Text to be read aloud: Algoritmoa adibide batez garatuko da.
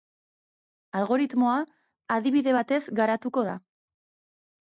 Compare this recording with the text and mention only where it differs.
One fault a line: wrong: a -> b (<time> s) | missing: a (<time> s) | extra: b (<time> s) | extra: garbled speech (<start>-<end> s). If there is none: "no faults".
no faults